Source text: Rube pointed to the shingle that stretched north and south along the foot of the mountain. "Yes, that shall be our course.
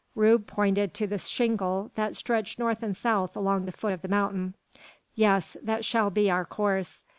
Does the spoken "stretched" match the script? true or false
true